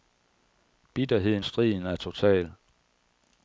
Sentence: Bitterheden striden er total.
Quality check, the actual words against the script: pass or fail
pass